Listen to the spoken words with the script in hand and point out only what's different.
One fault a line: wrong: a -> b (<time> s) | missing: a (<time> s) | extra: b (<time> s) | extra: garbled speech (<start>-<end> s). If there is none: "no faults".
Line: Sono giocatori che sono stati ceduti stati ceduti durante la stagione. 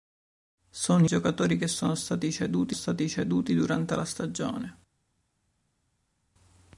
no faults